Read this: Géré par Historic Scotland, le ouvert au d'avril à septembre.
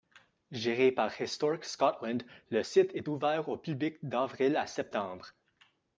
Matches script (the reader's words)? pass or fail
fail